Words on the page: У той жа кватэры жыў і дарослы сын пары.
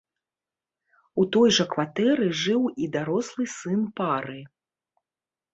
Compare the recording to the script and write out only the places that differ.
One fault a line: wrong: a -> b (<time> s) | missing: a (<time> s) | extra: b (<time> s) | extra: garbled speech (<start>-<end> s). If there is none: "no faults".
no faults